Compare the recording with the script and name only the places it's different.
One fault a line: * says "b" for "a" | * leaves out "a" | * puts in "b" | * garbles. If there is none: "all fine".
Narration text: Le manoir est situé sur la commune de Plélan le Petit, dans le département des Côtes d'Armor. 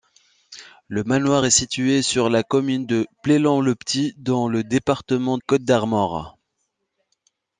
* leaves out "des"